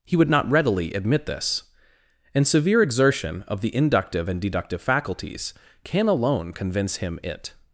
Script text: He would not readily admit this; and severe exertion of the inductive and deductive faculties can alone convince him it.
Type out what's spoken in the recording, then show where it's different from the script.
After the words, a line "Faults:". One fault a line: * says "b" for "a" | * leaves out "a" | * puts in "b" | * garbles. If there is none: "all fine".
He would not readily admit this; and severe exertion of the inductive and deductive faculties can alone convince him it.
Faults:
all fine